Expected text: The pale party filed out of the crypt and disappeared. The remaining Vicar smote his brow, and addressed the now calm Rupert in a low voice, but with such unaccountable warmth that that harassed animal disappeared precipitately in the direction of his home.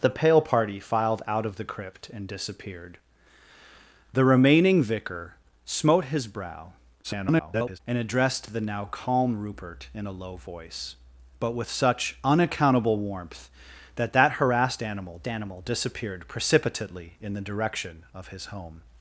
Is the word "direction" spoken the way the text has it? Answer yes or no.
yes